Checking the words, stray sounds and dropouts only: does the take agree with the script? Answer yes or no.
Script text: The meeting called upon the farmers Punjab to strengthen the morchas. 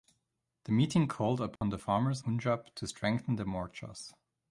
no